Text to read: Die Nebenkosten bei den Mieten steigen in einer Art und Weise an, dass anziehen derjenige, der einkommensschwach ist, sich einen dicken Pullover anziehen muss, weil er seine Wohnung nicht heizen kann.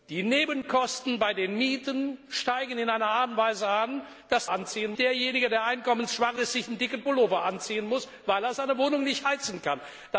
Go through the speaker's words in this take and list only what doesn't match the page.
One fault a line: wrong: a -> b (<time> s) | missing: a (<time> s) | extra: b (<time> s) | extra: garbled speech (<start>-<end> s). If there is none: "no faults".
no faults